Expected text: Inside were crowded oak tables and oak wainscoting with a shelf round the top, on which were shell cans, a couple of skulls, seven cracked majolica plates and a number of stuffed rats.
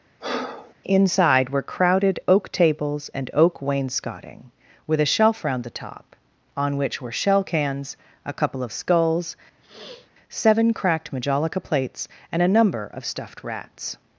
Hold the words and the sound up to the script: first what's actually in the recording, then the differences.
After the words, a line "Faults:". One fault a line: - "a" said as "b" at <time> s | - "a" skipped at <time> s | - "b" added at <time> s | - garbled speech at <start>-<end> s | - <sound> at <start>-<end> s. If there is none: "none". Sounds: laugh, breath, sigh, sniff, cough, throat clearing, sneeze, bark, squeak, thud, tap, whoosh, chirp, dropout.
Inside were crowded oak tables and oak wainscoting with a shelf round the top, on which were shell cans, a couple of skulls, seven cracked majolica plates and a number of stuffed rats.
Faults:
- breath at 0.2-0.7 s
- sniff at 9.6-10.1 s